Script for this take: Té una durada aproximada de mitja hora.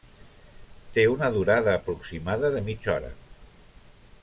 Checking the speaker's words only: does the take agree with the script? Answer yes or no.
yes